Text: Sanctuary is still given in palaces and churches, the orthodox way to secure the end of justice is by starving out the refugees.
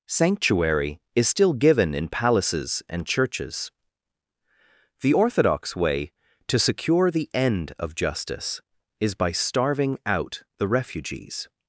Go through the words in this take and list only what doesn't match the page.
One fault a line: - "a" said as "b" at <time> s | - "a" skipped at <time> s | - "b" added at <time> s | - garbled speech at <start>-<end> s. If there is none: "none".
none